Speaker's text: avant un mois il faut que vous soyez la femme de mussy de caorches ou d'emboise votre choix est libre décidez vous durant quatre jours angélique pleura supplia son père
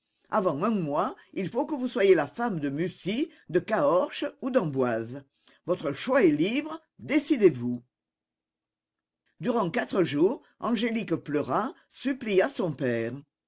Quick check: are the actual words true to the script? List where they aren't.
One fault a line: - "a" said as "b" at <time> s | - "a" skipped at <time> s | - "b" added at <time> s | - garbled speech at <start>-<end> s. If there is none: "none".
none